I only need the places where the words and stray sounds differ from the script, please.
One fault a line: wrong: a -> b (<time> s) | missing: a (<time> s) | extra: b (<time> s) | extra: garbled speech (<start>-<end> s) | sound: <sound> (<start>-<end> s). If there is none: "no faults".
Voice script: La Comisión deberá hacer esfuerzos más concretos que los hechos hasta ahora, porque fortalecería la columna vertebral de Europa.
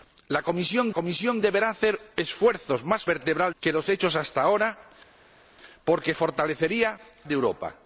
extra: Comisión (0.9 s)
wrong: concretos -> vertebral (3.0 s)
missing: la columna vertebral (7.0 s)